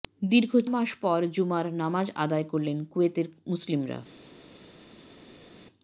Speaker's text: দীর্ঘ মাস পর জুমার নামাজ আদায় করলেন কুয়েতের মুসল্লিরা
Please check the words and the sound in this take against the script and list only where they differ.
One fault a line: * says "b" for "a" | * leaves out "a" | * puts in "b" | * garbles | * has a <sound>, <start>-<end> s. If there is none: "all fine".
all fine